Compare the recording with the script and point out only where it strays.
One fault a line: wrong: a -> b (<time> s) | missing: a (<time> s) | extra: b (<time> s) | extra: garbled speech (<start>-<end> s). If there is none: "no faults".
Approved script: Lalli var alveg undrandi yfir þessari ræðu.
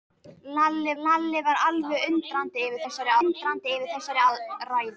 extra: lalli (1.0 s)
extra: undrandi yfir þessari (3.3 s)